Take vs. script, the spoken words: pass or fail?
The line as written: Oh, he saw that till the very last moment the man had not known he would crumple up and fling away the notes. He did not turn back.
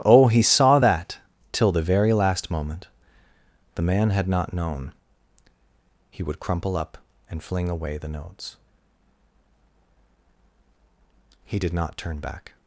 pass